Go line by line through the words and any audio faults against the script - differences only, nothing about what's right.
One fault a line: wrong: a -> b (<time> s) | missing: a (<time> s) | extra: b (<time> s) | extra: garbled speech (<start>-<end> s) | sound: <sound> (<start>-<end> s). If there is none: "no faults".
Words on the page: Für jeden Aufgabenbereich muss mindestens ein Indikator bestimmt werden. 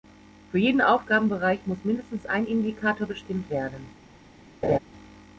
sound: laugh (4.6-4.8 s)